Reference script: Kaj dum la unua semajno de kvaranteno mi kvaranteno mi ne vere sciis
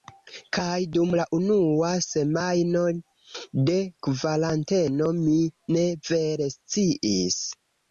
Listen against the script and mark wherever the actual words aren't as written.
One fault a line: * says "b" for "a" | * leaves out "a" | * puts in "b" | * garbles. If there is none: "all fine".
* leaves out "kvaranteno mi"